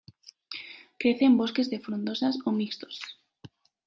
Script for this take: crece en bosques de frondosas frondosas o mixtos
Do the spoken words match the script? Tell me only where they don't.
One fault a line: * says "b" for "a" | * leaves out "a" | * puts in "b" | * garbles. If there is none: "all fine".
* leaves out "frondosas"